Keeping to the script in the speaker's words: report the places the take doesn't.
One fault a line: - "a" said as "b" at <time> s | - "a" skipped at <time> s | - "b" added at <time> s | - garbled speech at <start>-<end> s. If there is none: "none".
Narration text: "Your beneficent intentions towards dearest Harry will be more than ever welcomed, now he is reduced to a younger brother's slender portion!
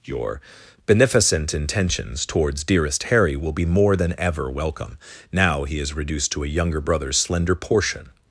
- "welcomed" said as "welcome" at 4.5 s